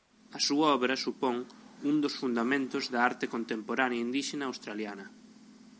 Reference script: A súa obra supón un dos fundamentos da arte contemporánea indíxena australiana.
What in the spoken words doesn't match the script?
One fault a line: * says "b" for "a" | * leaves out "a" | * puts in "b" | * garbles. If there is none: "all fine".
all fine